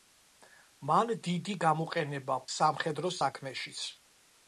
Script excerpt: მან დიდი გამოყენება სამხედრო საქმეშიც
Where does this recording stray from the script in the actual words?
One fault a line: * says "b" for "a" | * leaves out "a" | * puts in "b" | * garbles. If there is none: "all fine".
all fine